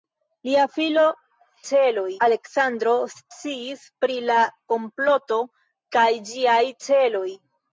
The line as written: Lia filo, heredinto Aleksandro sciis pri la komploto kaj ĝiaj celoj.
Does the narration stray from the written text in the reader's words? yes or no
yes